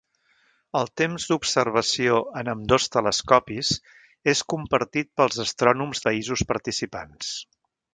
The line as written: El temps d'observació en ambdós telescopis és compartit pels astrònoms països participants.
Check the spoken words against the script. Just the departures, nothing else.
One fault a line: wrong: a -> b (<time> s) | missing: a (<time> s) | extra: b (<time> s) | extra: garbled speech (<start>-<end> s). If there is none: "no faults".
no faults